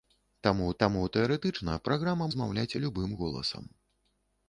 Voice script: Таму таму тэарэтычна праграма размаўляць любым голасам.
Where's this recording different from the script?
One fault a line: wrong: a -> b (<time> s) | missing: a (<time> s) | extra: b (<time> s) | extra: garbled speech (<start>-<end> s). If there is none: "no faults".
no faults